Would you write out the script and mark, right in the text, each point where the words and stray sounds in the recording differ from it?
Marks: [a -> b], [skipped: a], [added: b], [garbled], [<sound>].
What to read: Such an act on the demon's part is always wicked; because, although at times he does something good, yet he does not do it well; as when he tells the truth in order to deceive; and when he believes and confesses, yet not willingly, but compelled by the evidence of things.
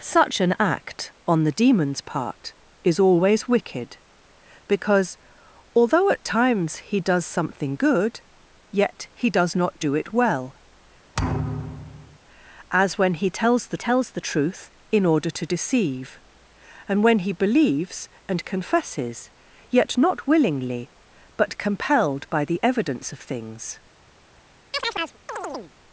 Such an act on the demon's part is always wicked; because, although at times he does something good, yet he does not do it well; [thud] as when he tells the [added: tells the] truth in order to deceive; and when he believes and confesses, yet not willingly, but compelled by the evidence of things. [chirp]